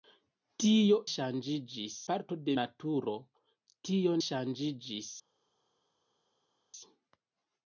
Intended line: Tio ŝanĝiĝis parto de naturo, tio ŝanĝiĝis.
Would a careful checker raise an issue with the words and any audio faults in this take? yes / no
no